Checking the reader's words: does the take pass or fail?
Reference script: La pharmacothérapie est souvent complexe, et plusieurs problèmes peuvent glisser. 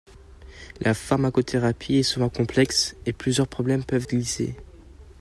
pass